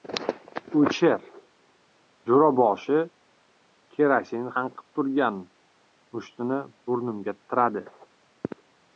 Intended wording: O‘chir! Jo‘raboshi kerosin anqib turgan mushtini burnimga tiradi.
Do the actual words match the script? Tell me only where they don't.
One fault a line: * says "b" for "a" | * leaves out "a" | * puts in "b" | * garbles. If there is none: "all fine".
all fine